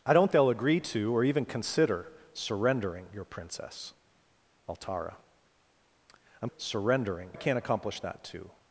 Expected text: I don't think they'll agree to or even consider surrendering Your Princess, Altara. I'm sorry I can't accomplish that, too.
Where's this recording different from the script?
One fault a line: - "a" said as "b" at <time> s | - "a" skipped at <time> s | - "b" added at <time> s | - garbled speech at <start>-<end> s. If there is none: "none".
- "think" skipped at 0.3 s
- "sorry" said as "surrendering" at 6.6 s